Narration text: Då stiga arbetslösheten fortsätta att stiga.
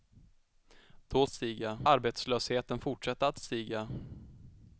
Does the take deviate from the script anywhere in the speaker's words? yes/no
no